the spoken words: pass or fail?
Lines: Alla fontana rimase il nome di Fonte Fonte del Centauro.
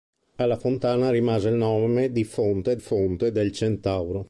pass